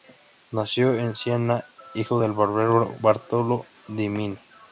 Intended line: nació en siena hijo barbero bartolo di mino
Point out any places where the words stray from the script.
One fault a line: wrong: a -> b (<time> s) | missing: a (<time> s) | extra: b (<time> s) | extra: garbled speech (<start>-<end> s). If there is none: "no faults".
extra: del (2.2 s)